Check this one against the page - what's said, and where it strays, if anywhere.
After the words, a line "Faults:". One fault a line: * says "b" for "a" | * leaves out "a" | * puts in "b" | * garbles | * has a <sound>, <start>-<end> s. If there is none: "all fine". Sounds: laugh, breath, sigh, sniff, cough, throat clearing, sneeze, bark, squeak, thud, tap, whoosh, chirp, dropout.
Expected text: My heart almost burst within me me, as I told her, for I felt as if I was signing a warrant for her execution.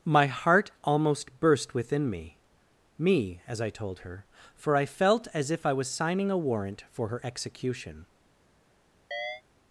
My heart almost burst within me me, as I told her, for I felt as if I was signing a warrant for her execution.
Faults:
* has a chirp, 9.1-9.4 s